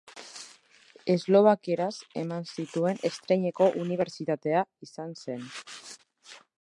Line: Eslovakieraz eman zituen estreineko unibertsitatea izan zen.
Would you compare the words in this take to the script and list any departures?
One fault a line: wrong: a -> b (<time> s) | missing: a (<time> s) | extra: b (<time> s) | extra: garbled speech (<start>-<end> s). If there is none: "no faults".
no faults